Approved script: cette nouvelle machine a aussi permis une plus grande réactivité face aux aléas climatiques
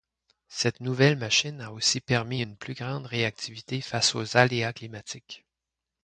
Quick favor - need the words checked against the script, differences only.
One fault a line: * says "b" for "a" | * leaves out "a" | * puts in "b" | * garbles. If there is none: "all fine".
all fine